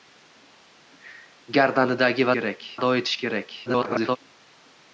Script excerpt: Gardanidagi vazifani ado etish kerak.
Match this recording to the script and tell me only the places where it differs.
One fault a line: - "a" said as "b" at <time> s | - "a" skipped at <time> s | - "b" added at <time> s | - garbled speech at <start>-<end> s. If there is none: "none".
- "vazifani" said as "kerak" at 2.4 s
- garbled speech at 3.6-4.2 s